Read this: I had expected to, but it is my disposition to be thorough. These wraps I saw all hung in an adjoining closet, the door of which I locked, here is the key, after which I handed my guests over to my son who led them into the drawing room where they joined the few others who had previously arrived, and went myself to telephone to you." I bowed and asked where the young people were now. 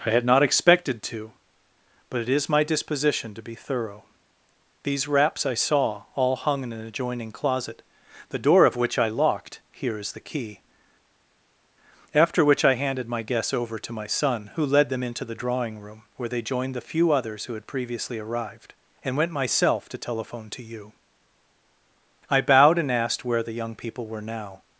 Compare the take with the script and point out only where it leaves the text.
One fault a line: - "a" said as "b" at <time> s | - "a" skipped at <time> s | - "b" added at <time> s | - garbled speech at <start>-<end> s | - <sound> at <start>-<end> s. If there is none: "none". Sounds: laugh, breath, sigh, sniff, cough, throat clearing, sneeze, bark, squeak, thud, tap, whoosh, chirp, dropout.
- "not" added at 0.2 s